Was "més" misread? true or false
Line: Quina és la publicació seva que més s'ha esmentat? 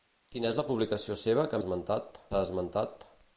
true